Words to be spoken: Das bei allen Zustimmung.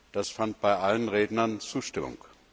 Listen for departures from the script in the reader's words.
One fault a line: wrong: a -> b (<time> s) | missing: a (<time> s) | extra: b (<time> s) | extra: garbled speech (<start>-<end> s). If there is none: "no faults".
extra: fand (0.3 s)
extra: Rednern (1.1 s)